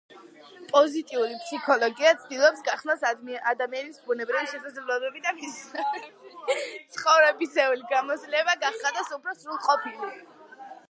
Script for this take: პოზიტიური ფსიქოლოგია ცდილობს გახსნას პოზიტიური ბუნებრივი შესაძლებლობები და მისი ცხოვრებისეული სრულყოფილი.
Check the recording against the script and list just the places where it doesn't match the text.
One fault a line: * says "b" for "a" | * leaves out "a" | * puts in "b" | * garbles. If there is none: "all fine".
* says "ადამიანის" for "პოზიტიური"
* puts in "გამოცდილება გახადოს უფრო"